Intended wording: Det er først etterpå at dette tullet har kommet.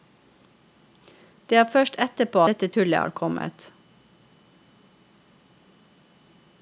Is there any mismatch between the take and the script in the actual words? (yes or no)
yes